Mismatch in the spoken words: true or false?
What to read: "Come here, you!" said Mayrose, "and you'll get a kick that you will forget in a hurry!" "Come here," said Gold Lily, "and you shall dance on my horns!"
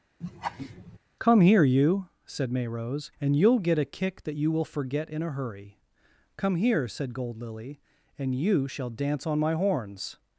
false